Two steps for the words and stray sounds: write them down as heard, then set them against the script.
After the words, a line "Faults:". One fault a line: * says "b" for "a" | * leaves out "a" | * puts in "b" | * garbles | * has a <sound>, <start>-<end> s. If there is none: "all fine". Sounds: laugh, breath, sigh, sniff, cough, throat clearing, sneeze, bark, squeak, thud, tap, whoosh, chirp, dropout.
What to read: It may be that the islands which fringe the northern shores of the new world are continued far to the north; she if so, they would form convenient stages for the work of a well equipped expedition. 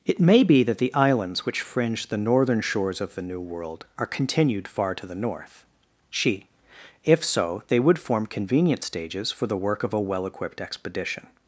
It may be that the islands which fringe the northern shores of the new world are continued far to the north; she if so, they would form convenient stages for the work of a well equipped expedition.
Faults:
all fine